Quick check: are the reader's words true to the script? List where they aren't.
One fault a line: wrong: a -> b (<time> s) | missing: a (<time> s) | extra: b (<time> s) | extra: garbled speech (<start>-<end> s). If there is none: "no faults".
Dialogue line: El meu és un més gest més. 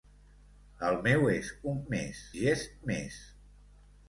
no faults